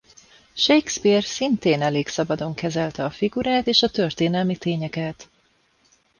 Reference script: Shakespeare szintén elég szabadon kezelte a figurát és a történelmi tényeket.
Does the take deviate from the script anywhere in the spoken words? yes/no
no